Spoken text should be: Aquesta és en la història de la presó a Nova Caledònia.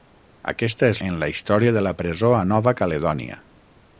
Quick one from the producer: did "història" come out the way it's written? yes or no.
yes